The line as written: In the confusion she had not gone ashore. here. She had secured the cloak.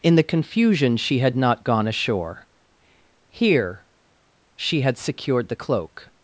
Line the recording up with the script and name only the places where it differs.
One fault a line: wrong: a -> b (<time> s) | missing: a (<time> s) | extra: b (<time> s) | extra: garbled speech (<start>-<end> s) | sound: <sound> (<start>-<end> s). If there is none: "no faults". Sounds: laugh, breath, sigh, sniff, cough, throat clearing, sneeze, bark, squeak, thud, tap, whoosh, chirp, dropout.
no faults